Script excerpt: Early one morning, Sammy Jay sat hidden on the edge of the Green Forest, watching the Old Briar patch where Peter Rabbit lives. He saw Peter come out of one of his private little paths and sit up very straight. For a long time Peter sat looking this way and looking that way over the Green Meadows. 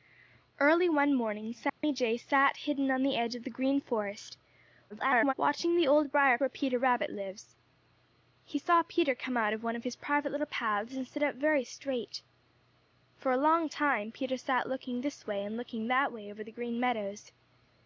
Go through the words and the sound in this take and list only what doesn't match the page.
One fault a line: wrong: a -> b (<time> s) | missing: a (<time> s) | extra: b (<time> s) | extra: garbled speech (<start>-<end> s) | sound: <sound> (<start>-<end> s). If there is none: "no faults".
sound: dropout (1.7-1.8 s)
extra: garbled speech (4.9-5.3 s)
missing: patch (6.4 s)